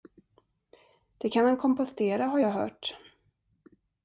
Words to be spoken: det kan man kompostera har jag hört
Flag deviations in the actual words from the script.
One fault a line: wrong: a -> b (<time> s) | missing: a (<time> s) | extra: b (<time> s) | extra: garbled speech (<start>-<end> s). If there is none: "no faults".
no faults